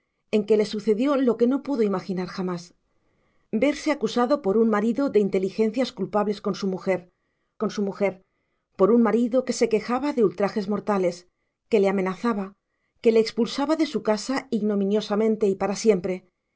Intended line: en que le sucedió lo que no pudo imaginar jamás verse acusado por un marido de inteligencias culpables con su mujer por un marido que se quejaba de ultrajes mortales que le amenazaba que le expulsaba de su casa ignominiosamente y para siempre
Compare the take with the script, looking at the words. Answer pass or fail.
fail